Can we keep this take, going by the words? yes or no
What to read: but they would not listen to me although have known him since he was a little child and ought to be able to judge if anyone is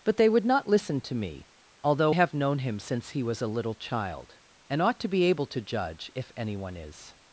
yes